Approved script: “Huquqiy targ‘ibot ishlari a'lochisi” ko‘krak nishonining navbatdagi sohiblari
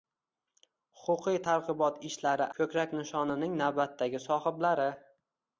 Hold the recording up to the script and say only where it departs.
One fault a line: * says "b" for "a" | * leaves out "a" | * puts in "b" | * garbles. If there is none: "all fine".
* leaves out "a'lochisi"